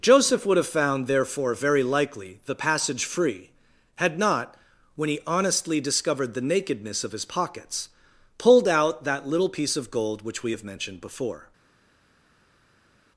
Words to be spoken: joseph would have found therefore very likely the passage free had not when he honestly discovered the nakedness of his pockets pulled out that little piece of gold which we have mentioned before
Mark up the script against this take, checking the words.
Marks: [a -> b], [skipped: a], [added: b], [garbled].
joseph would have found therefore very likely the passage free had not when he honestly discovered the nakedness of his pockets pulled out that little piece of gold which we have mentioned before